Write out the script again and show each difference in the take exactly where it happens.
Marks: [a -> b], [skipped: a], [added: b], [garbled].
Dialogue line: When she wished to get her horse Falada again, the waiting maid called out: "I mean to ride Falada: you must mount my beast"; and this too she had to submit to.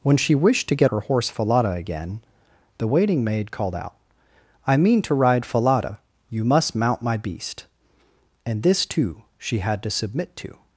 When she wished to get her horse Falada again, the waiting maid called out: "I mean to ride Falada: you must mount my beast"; and this too she had to submit to.